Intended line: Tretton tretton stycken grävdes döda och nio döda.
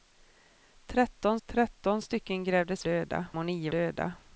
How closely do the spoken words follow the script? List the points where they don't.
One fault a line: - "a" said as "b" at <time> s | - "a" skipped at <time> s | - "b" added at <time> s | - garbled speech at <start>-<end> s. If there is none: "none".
none